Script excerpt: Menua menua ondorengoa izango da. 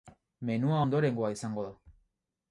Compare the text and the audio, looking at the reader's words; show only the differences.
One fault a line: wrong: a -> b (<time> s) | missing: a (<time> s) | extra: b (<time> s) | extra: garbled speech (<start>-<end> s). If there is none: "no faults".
missing: menua (0.8 s)